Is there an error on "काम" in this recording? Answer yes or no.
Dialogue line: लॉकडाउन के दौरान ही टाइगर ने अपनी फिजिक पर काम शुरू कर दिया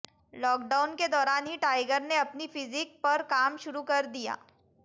no